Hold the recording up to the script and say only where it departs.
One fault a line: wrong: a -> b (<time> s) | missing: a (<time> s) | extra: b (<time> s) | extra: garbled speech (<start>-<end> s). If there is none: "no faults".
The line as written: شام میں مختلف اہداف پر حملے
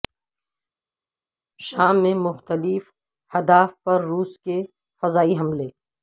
extra: روس کے فضائی (4.0 s)